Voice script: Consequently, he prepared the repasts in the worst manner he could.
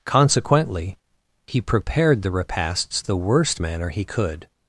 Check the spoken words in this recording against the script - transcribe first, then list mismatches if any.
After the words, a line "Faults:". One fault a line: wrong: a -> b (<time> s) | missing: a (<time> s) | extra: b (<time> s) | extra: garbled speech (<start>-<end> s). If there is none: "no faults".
Consequently, he prepared the repasts the worst manner he could.
Faults:
missing: in (3.0 s)